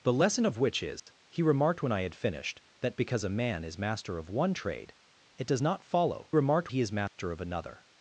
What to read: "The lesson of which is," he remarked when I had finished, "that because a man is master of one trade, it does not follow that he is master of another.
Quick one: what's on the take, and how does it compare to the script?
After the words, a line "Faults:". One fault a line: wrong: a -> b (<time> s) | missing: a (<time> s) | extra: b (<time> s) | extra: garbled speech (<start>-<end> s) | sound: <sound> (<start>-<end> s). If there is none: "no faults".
"The lesson of which is," he remarked when I had finished, "that because a man is master of one trade, it does not follow remarked he is master of another.
Faults:
sound: dropout (1.0-1.1 s)
wrong: that -> remarked (6.3 s)
sound: dropout (7.1-7.2 s)